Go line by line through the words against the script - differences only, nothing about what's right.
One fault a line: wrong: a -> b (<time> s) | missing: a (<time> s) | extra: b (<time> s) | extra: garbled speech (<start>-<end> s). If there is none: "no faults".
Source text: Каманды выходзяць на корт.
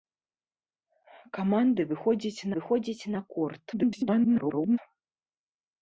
extra: выходзяць (2.6 s)
extra: garbled speech (3.7-4.8 s)